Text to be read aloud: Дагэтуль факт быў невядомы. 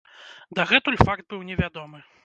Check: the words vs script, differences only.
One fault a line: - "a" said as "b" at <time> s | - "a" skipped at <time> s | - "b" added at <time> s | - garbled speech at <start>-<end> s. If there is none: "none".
none